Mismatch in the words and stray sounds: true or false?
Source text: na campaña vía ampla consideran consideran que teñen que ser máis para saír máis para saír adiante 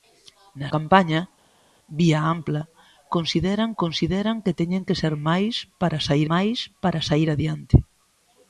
false